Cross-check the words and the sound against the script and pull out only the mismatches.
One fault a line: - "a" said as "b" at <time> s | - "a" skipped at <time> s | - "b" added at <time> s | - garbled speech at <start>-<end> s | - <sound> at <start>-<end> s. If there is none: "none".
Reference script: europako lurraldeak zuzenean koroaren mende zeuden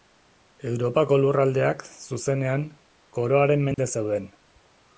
- dropout at 3.7-3.8 s